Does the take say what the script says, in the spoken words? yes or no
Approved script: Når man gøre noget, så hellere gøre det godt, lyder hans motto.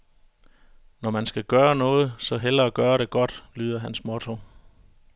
no